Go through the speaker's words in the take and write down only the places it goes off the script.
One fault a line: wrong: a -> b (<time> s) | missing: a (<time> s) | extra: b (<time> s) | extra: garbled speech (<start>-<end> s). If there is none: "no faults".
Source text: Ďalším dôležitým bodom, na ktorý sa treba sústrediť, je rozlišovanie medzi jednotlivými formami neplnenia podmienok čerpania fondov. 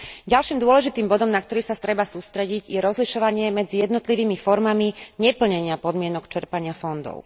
no faults